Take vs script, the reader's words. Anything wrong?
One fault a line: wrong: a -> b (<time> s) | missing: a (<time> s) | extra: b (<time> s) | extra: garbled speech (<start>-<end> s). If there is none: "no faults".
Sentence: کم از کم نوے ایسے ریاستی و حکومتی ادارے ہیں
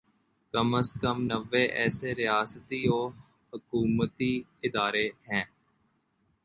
no faults